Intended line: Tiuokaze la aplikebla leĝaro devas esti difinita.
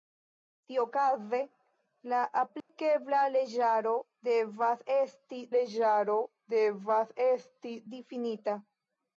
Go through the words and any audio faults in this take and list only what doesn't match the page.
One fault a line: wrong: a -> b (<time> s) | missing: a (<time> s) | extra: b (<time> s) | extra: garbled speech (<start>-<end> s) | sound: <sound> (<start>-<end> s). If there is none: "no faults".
sound: dropout (2.6-2.7 s)
extra: leĝaro devas esti (5.5 s)